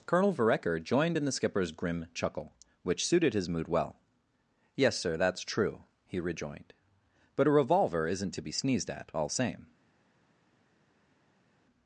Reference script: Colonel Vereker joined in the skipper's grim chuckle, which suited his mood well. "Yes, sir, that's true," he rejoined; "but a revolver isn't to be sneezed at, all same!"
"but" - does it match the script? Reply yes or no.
yes